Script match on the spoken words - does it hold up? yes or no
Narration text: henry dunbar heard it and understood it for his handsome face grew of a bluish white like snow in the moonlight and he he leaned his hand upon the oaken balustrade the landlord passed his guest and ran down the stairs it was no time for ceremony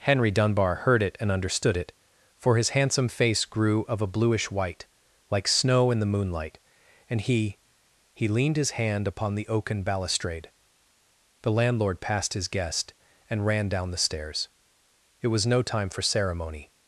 yes